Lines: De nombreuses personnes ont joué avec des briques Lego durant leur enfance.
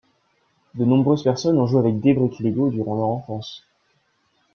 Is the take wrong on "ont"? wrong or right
right